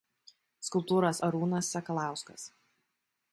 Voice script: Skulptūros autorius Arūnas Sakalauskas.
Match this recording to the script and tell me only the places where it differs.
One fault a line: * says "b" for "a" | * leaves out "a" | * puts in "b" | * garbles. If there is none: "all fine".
* leaves out "autorius"